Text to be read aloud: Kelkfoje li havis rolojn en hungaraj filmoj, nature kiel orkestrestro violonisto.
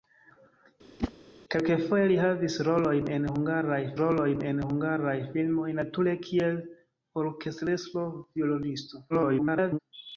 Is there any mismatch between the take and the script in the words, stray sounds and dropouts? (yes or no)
yes